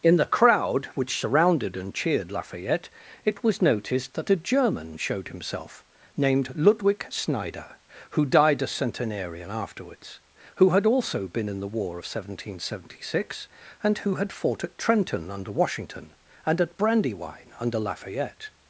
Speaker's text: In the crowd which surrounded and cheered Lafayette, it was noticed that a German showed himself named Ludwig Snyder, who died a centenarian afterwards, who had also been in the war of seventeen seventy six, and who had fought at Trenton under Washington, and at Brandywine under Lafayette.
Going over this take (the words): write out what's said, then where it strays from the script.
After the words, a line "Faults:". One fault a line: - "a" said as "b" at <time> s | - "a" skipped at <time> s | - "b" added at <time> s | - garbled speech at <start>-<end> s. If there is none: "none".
In the crowd which surrounded and cheered Lafayette, it was noticed that a German showed himself named Ludwig Snyder, who died a centenarian afterwards, who had also been in the war of seventeen seventy six, and who had fought at Trenton under Washington, and at Brandywine under Lafayette.
Faults:
none